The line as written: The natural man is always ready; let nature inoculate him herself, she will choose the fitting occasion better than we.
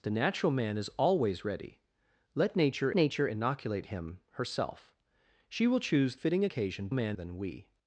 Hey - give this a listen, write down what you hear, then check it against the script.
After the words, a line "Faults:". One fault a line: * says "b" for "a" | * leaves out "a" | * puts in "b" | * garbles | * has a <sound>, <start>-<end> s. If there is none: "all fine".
The natural man is always ready; let nature nature inoculate him herself, she will choose fitting occasion man than we.
Faults:
* puts in "nature"
* leaves out "the"
* says "man" for "better"